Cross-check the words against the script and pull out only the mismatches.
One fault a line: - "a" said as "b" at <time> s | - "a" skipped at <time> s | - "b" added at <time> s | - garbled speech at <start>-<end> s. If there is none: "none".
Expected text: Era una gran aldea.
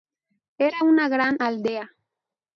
none